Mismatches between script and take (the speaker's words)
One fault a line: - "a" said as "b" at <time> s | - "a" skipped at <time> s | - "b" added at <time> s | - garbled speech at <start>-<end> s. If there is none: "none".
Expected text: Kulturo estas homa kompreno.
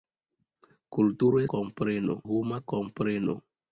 - "estas" said as "kompreno" at 1.6 s